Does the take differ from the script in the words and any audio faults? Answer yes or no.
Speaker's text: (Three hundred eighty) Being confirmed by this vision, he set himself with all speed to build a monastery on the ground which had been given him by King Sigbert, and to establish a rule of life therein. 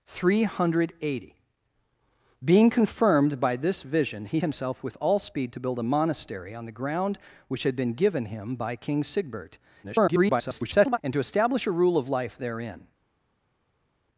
yes